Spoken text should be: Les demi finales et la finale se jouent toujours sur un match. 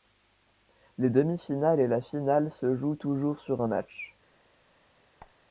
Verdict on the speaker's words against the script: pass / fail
pass